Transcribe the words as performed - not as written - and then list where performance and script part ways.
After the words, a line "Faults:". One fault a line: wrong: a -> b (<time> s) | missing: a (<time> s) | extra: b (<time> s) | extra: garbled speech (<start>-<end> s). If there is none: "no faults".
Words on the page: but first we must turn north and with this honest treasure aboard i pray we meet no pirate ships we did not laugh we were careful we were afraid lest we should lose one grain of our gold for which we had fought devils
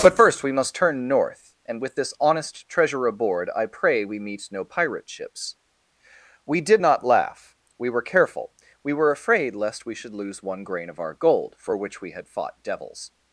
but first we must turn north and with this honest treasure aboard i pray we meet no pirate ships we did not laugh we were careful we were afraid lest we should lose one grain of our gold for which we had fought devils
Faults:
no faults